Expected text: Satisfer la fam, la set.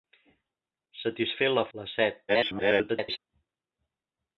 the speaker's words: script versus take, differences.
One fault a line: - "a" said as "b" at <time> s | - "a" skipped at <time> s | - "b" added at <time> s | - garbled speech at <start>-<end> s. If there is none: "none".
- "fam" skipped at 1.6 s
- garbled speech at 2.3-3.2 s